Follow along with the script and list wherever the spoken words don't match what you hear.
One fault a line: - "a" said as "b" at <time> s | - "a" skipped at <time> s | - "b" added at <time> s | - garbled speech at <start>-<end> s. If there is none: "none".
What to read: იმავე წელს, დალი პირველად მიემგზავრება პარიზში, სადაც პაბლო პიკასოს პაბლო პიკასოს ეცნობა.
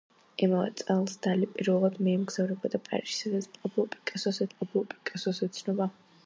none